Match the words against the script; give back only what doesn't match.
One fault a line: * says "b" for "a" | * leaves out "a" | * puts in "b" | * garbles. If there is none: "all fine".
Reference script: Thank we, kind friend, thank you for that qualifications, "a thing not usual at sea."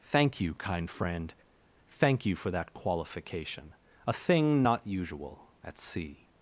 * says "you" for "we"
* says "qualification" for "qualifications"